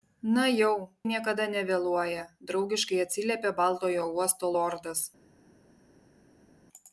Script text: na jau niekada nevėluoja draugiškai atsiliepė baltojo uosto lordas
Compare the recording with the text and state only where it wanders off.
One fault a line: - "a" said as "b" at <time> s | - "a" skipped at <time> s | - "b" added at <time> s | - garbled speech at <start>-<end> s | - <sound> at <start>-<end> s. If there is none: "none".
none